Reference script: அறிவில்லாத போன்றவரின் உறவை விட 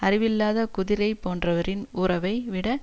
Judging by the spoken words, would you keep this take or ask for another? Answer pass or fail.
fail